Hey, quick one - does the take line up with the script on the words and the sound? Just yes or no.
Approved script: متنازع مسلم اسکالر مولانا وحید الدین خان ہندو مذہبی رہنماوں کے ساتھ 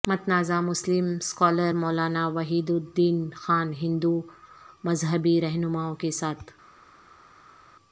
yes